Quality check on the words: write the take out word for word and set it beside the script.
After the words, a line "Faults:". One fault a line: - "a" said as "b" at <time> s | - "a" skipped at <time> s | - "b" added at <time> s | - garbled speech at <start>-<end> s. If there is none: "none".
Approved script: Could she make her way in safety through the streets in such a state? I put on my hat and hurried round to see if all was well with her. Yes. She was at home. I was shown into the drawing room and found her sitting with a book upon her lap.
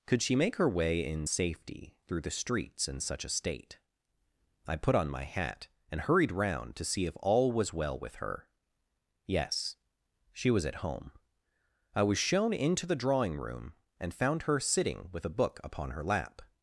Could she make her way in safety through the streets in such a state? I put on my hat and hurried round to see if all was well with her. Yes. She was at home. I was shown into the drawing room and found her sitting with a book upon her lap.
Faults:
none